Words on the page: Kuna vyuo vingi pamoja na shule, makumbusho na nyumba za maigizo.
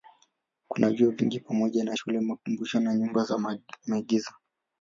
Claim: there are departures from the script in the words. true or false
false